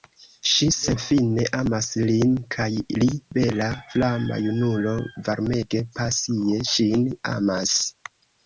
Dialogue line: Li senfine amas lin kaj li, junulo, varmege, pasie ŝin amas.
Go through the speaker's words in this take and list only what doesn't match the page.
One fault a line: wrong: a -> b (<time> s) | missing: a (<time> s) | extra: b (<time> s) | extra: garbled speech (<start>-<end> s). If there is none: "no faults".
wrong: Li -> Ŝi (0.5 s)
extra: bela flama (3.4 s)